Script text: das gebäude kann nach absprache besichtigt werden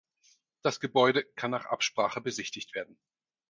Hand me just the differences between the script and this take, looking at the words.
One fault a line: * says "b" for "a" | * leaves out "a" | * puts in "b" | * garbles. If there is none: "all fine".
all fine